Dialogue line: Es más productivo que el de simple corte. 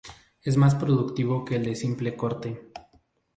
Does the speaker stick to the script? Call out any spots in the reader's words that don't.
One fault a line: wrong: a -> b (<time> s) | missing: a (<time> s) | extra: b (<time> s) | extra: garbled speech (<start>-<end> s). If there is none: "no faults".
no faults